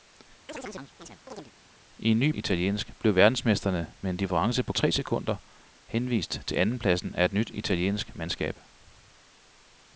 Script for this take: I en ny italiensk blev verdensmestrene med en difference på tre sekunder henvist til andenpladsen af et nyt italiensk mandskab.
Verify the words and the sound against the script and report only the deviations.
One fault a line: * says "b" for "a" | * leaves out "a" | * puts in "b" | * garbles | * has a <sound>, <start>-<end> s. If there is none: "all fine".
* has a chirp, 0.5-1.5 s